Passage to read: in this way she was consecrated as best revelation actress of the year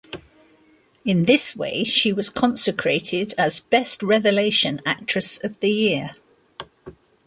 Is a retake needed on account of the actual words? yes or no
no